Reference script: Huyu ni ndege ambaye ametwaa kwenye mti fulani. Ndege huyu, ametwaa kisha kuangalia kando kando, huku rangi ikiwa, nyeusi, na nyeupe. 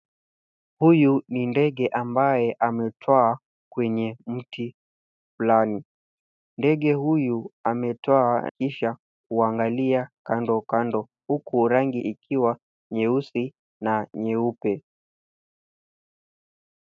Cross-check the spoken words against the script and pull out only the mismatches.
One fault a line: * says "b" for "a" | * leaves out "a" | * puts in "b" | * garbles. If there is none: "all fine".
all fine